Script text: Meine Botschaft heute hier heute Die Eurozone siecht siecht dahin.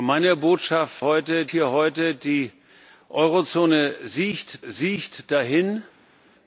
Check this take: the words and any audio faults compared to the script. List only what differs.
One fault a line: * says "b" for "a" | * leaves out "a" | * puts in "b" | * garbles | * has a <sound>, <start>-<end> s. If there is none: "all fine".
all fine